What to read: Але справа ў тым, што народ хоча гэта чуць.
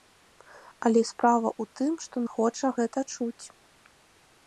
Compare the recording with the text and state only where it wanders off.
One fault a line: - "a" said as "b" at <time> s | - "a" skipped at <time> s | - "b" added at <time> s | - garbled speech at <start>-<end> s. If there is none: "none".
- "народ" skipped at 2.1 s